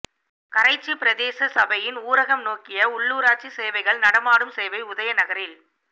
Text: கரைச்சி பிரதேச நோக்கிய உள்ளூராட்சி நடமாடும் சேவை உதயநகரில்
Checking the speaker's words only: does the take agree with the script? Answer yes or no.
no